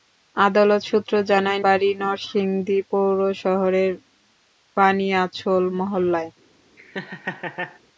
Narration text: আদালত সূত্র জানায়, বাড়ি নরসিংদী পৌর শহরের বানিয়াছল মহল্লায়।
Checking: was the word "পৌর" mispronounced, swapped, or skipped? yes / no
no